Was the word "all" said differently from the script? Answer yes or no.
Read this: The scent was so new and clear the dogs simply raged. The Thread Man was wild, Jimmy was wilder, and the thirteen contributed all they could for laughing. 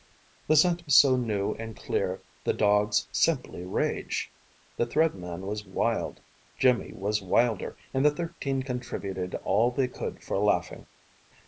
no